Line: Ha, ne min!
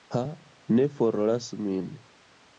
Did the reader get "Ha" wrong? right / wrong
right